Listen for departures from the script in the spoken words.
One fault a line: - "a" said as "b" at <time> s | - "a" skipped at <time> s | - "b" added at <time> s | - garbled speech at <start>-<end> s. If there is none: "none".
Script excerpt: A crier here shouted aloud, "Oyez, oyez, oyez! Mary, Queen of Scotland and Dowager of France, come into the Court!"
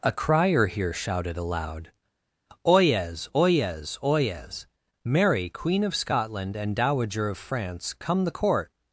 - "into" skipped at 8.2 s